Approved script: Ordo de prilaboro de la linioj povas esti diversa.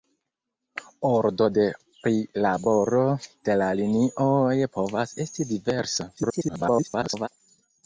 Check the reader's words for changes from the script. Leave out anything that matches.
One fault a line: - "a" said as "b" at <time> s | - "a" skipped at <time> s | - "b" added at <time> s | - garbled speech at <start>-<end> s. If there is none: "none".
- garbled speech at 6.2-7.3 s